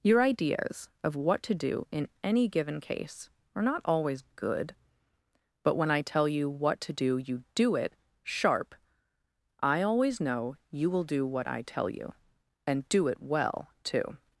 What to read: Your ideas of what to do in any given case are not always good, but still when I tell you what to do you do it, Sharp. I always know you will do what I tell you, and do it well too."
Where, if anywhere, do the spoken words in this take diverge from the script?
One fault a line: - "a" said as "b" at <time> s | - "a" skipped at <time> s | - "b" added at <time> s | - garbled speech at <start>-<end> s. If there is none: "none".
- "still" skipped at 5.8 s